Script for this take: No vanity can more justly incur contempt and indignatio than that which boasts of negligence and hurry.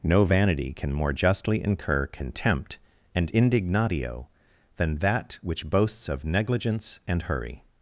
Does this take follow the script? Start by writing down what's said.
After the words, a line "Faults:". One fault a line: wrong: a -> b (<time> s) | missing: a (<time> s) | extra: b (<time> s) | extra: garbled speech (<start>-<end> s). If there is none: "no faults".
No vanity can more justly incur contempt and indignatio than that which boasts of negligence and hurry.
Faults:
no faults